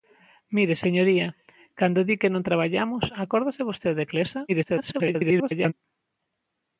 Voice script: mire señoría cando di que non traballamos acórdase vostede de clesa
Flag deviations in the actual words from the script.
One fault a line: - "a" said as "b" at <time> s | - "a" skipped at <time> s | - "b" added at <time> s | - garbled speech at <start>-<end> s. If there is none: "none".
- garbled speech at 4.5-5.7 s